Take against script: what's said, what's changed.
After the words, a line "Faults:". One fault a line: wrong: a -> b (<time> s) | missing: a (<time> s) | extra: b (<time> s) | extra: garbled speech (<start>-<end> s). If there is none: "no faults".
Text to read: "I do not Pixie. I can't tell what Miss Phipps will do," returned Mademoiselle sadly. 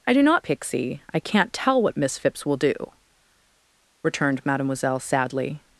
"I do not Pixie. I can't tell what Miss Phipps will do," returned Mademoiselle sadly.
Faults:
no faults